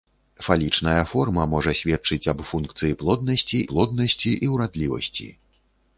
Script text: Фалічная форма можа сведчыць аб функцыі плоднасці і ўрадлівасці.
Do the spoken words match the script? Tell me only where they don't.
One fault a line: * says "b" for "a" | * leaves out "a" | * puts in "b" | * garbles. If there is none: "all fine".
* puts in "плоднасці"